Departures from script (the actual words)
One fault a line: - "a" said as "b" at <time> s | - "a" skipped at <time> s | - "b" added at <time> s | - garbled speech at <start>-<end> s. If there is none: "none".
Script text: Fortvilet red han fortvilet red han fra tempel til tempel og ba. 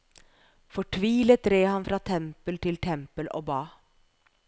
- "fortvilet red han" skipped at 1.9 s